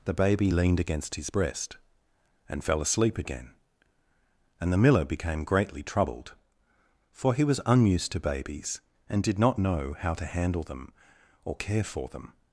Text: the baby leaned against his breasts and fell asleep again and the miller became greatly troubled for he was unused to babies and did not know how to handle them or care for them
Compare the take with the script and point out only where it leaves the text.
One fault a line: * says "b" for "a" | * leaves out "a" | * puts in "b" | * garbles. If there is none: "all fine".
* says "breast" for "breasts"